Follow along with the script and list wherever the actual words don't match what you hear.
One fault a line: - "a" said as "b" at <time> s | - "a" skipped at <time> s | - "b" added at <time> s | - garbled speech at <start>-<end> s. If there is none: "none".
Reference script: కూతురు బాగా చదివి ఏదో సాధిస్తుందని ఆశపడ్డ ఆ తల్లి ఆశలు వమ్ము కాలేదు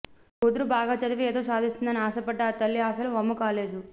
none